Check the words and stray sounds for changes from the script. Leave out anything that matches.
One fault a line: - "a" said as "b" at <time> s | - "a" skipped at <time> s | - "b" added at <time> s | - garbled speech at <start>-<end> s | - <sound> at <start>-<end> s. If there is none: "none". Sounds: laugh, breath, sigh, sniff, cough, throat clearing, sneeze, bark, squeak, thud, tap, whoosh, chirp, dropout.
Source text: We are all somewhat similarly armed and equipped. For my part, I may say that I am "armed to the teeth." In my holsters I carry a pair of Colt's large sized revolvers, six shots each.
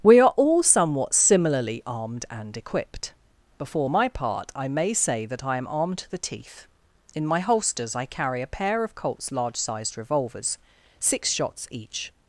- "For" said as "Before" at 3.6 s